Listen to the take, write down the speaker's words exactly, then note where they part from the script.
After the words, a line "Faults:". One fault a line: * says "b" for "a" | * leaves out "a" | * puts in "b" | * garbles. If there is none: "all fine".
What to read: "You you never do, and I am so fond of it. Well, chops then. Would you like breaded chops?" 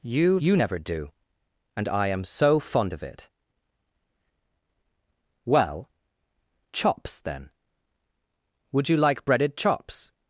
"You you never do, and I am so fond of it. Well, chops then. Would you like breaded chops?"
Faults:
all fine